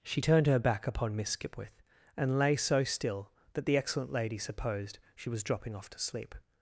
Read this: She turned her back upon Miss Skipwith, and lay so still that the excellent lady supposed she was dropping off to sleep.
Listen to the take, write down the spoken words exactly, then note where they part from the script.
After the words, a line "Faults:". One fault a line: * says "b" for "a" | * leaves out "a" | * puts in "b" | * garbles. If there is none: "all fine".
She turned her back upon Miss Skipwith, and lay so still that the excellent lady supposed she was dropping off to sleep.
Faults:
all fine